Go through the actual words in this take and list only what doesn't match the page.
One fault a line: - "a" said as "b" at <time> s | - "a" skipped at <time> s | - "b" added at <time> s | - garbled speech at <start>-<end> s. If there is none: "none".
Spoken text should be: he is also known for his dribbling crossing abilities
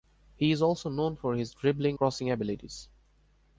none